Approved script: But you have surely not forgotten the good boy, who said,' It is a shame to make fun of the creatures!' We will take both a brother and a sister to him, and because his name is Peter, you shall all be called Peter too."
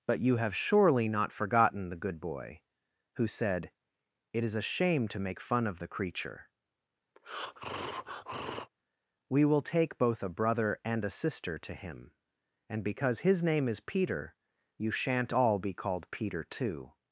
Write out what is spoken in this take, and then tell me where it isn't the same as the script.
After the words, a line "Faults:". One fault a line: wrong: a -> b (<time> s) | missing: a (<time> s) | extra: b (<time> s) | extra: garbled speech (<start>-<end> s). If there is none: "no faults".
But you have surely not forgotten the good boy, who said,' It is a shame to make fun of the creature!' We will take both a brother and a sister to him, and because his name is Peter, you shan't all be called Peter too."
Faults:
wrong: creatures -> creature (5.9 s)
wrong: shall -> shan't (14.9 s)